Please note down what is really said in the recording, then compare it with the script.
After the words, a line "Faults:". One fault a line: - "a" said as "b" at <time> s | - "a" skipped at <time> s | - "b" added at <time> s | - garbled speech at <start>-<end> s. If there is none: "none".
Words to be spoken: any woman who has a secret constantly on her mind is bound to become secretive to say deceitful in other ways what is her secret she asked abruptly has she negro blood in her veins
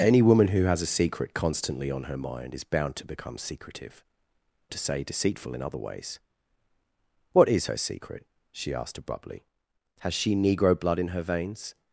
any woman who has a secret constantly on her mind is bound to become secretive to say deceitful in other ways what is her secret she asked abruptly has she negro blood in her veins
Faults:
none